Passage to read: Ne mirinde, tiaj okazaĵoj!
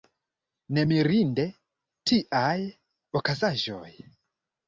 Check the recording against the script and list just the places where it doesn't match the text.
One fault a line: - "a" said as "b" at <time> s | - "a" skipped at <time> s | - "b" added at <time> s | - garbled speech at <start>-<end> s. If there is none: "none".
none